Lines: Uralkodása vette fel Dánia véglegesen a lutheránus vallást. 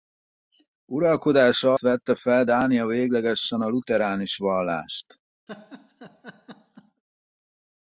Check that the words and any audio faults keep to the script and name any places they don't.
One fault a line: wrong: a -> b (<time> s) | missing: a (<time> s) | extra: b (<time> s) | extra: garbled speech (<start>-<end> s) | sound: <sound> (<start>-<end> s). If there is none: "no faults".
sound: laugh (5.5-7.0 s)